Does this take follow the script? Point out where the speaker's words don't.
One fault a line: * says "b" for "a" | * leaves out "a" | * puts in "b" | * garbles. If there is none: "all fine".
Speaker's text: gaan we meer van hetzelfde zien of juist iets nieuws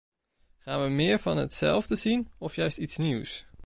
all fine